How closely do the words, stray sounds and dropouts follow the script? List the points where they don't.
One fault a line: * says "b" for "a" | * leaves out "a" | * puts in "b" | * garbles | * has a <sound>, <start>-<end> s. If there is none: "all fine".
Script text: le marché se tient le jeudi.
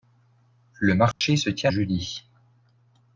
* has a dropout, 1.1-1.2 s
* leaves out "le"